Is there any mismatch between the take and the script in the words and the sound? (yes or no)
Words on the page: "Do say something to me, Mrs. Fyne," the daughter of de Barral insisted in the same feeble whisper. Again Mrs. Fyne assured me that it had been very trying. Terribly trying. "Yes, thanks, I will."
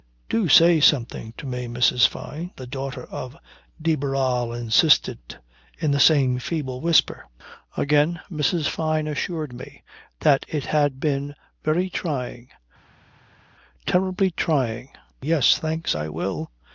no